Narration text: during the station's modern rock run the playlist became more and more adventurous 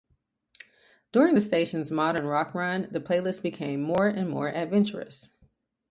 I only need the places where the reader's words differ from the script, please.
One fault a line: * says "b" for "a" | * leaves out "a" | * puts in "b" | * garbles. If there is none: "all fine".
all fine